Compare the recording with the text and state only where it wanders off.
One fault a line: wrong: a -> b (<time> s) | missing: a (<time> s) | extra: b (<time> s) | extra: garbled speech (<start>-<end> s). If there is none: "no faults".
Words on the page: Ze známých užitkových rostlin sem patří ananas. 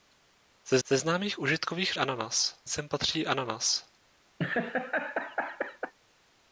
extra: ze (0.9 s)
wrong: rostlin -> ananas (2.0 s)